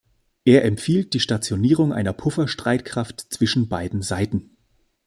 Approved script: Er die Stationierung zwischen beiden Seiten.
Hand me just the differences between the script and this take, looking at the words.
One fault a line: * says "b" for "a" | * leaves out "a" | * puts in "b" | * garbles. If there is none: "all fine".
* puts in "empfiehlt"
* puts in "einer Pufferstreitkraft"